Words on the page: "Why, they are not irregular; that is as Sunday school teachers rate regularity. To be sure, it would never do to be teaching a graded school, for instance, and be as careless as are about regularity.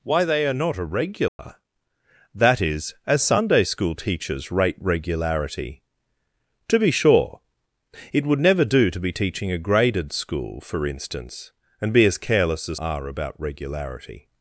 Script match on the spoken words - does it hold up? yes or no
yes